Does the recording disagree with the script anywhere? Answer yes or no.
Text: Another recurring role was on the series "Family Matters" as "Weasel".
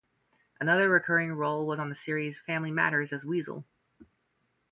no